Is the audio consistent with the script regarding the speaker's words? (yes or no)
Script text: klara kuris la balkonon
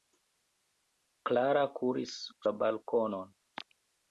yes